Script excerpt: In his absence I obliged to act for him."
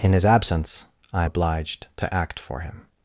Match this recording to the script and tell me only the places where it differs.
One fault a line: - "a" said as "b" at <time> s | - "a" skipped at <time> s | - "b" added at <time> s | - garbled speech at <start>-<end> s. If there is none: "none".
none